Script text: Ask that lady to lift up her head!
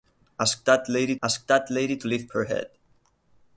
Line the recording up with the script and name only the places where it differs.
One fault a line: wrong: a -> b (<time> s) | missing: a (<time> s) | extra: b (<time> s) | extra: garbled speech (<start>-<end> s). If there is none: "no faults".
extra: ask that lady (1.2 s)
missing: up (2.3 s)